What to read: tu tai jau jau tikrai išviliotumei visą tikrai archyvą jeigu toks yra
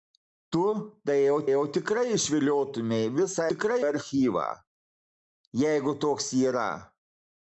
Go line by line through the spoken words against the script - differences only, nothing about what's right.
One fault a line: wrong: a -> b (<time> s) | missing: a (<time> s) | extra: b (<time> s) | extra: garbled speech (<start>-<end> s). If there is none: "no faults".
no faults